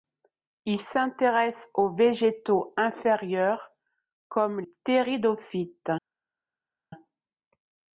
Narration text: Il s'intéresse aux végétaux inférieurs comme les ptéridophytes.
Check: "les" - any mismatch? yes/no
yes